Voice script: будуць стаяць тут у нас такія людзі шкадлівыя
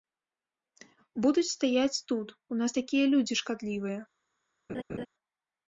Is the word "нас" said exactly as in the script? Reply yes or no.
yes